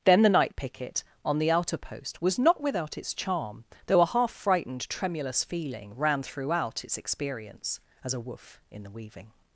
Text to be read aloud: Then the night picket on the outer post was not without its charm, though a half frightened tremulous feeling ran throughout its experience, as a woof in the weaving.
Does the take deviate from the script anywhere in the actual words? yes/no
no